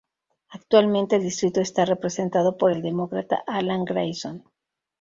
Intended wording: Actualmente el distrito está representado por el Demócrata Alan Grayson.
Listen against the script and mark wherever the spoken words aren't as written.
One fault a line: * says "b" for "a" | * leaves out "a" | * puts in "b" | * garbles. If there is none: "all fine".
all fine